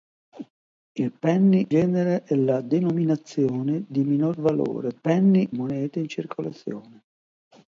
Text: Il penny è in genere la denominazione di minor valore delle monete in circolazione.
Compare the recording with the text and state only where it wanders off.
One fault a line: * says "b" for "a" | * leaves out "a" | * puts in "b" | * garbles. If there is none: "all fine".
* leaves out "in"
* says "penny" for "delle"